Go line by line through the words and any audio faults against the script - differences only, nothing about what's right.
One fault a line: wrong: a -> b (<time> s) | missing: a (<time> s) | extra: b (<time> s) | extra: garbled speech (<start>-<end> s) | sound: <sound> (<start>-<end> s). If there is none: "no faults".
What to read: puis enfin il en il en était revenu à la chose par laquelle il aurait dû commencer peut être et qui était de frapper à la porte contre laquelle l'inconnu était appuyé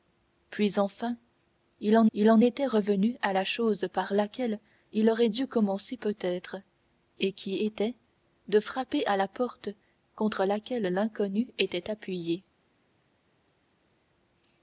no faults